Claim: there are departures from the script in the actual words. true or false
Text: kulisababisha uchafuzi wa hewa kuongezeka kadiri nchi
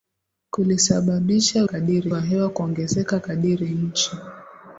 true